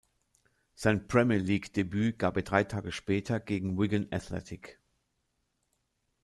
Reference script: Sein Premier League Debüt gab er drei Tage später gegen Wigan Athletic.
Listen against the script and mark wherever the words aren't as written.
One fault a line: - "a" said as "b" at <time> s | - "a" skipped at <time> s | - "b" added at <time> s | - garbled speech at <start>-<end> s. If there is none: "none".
none